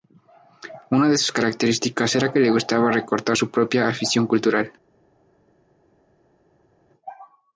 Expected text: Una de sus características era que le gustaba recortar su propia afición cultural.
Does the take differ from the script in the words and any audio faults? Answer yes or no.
no